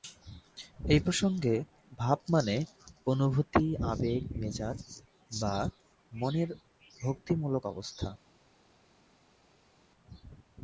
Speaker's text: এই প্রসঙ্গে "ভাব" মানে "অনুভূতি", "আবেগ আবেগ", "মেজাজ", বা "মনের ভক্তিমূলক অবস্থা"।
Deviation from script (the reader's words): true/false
true